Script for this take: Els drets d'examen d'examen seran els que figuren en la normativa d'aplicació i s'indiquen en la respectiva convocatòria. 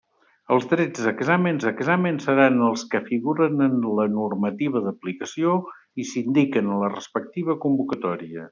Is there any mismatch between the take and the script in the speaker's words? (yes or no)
no